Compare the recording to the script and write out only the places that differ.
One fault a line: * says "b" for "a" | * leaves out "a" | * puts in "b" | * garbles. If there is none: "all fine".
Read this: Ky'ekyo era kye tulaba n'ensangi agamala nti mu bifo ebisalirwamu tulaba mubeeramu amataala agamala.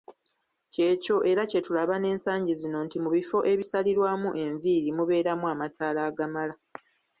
* says "zino" for "agamala"
* says "enviiri" for "tulaba"